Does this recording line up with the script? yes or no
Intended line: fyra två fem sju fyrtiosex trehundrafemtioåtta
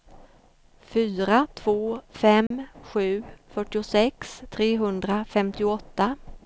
yes